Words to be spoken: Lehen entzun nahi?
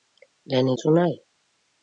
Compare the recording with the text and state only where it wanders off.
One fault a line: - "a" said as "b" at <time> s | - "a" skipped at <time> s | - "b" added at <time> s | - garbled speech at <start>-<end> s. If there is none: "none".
none